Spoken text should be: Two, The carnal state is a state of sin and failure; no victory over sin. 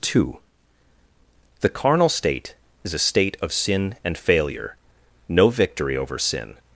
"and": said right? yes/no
yes